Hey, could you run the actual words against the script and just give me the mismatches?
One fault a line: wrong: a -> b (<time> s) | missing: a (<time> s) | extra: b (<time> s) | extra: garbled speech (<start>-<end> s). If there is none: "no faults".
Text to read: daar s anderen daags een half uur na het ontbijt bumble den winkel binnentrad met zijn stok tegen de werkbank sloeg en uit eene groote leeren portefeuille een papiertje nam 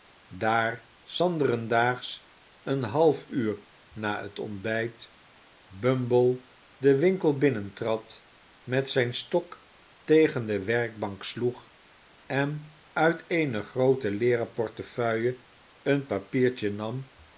no faults